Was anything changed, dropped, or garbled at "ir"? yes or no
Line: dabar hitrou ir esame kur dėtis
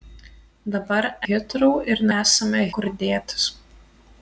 no